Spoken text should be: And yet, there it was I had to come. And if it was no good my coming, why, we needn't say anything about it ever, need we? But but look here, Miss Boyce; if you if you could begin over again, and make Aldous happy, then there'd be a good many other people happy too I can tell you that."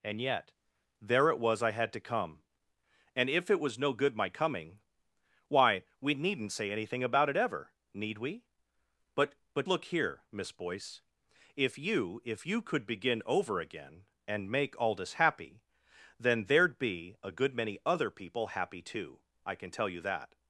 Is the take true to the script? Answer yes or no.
yes